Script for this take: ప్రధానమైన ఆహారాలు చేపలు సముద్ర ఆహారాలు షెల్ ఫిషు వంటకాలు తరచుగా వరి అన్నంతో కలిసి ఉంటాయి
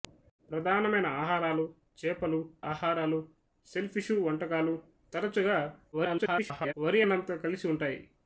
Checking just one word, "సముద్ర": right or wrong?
wrong